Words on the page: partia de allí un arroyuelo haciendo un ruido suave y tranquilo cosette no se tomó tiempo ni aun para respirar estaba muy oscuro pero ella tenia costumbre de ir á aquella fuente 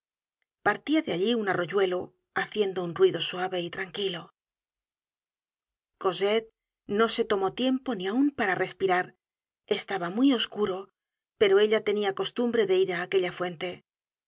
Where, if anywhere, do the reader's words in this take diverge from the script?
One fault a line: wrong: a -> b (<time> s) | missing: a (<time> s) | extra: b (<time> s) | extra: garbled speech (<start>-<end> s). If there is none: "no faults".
no faults